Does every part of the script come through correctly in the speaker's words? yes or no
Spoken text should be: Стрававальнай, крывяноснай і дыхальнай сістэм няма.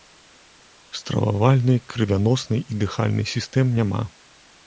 yes